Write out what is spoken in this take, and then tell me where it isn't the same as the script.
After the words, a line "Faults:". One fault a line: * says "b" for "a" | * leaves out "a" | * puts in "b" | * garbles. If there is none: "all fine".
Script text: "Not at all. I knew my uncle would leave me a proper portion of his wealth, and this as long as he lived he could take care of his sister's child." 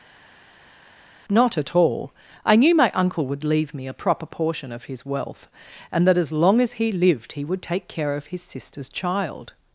"Not at all. I knew my uncle would leave me a proper portion of his wealth, and that as long as he lived he would take care of his sister's child."
Faults:
* says "that" for "this"
* says "would" for "could"